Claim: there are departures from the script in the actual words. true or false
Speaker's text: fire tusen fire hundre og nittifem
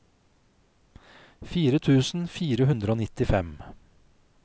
false